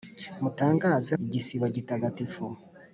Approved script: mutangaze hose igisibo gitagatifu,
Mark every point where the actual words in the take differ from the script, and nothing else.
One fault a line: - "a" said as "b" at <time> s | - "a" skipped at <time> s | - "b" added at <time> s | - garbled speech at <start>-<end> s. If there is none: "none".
- "hose" skipped at 1.1 s